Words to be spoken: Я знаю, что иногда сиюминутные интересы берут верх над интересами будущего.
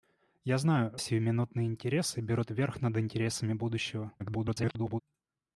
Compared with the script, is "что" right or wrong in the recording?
wrong